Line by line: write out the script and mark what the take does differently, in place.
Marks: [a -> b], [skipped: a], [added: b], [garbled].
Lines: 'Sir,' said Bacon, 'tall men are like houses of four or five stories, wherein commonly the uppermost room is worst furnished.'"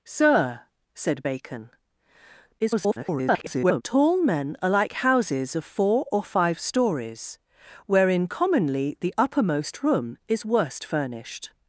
'Sir,' said Bacon, [garbled] 'tall men are like houses of four or five stories, wherein commonly the uppermost room is worst furnished.'"